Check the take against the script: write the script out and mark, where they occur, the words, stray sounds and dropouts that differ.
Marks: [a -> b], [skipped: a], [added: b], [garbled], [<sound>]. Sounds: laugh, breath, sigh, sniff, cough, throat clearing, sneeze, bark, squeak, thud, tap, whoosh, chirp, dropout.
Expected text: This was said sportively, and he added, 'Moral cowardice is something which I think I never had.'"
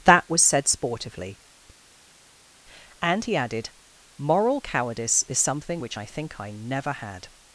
[This -> That] was said sportively, and he added, 'Moral cowardice is something which I think I never had.'"